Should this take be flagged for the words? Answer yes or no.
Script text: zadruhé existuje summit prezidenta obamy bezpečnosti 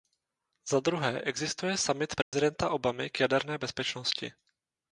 yes